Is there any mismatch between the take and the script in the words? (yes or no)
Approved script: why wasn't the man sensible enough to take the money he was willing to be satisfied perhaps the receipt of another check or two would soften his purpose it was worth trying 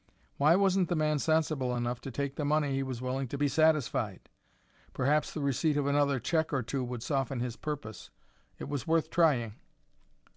no